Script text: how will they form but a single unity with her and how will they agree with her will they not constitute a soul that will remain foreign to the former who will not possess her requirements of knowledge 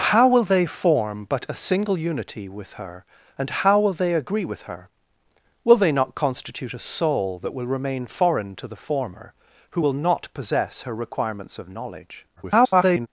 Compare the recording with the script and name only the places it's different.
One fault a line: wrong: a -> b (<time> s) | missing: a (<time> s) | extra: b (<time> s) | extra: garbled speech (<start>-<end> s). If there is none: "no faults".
extra: garbled speech (12.4-13.1 s)